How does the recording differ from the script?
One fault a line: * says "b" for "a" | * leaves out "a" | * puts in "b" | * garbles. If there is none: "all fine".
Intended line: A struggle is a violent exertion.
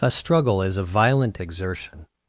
all fine